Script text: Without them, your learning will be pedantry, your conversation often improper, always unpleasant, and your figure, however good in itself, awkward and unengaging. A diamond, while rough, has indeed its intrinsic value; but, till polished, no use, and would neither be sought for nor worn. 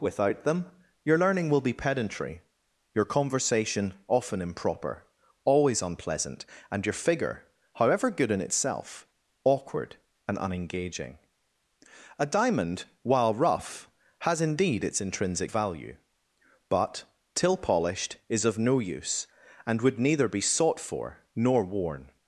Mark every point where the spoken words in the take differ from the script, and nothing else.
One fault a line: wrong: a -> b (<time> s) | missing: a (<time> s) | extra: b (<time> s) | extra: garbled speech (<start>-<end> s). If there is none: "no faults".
extra: is of (18.3 s)